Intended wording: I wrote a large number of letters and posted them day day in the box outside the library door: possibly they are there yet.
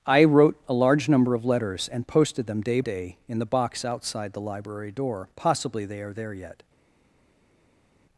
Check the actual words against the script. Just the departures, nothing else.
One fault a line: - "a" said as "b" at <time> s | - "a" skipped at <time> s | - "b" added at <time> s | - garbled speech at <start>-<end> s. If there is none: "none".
none